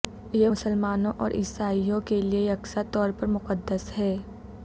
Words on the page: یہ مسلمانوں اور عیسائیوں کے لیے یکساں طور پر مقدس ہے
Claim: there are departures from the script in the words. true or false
false